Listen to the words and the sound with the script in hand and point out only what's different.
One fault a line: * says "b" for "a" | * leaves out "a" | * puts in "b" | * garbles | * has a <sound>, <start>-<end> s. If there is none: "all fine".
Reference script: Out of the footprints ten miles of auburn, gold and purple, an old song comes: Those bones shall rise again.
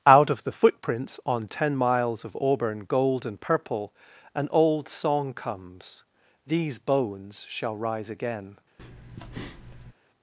* puts in "on"
* says "These" for "Those"
* has a breath, 8.8-9.9 s